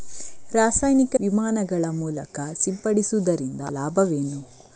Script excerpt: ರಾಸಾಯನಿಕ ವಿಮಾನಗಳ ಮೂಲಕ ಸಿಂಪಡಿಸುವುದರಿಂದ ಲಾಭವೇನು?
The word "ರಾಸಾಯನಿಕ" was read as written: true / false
true